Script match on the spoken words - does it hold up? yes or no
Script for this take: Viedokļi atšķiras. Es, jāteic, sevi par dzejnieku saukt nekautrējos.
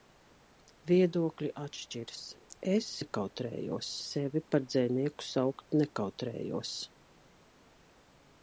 no